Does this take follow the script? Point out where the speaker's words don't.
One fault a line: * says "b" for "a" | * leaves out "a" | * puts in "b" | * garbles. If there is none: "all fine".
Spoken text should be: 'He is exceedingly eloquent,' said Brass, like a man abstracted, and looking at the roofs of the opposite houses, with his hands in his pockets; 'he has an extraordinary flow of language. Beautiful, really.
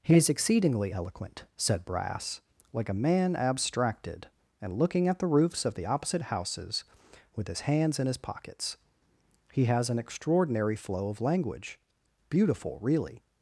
all fine